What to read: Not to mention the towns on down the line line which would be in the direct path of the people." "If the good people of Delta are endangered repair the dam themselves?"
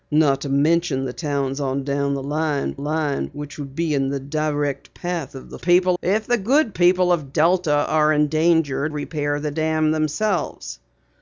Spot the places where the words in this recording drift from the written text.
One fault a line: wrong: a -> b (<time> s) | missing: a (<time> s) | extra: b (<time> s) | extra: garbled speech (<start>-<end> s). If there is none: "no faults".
no faults